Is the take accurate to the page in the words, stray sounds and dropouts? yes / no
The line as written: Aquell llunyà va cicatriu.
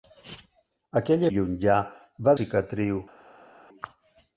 yes